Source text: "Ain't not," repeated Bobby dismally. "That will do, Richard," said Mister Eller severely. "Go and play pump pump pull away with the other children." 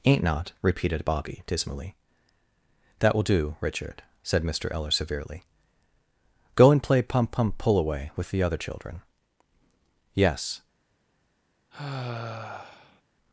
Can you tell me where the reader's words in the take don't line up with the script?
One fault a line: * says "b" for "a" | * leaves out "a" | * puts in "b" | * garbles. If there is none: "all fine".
* puts in "Yes"